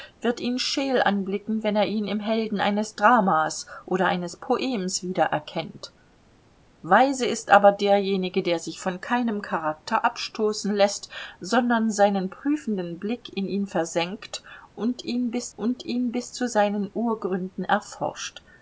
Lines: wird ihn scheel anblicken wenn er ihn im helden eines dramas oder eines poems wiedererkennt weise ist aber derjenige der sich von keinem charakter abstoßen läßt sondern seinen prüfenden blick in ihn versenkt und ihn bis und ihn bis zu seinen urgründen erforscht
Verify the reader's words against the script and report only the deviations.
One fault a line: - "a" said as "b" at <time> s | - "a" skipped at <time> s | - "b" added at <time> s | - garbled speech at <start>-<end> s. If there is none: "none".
none